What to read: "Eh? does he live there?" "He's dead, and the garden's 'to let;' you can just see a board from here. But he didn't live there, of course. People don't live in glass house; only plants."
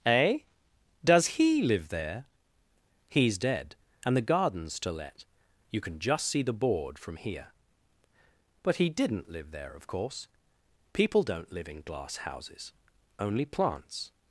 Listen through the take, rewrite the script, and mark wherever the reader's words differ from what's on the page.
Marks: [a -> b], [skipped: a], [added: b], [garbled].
"Eh? does he live there?" "He's dead, and the garden's 'to let;' you can just see [a -> the] board from here. But he didn't live there, of course. People don't live in glass [house; -> houses] only plants."